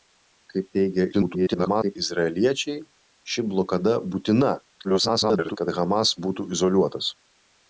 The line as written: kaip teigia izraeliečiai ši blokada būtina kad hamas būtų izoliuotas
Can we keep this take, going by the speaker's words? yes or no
no